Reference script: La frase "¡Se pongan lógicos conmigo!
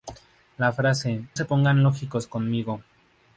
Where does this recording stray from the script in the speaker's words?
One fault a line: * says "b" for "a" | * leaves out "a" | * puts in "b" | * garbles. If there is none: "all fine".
all fine